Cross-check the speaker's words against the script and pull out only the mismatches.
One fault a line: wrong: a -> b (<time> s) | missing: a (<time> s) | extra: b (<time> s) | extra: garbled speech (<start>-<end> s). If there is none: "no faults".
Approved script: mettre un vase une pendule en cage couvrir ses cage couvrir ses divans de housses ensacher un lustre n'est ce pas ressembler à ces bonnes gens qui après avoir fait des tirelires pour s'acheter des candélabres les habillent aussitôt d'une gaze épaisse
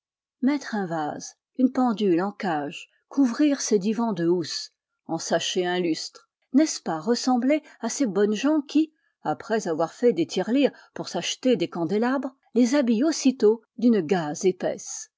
missing: cage couvrir ses (3.8 s)